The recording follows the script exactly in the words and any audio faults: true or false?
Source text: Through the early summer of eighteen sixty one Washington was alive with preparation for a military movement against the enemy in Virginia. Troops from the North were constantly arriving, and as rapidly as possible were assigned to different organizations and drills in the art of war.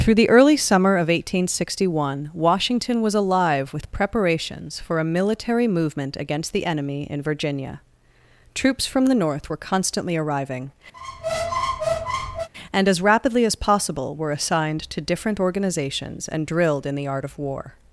false